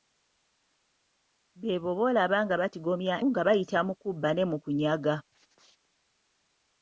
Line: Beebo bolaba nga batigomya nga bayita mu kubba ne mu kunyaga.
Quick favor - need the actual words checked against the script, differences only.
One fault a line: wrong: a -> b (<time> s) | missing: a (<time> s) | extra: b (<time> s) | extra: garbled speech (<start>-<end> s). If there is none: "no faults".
no faults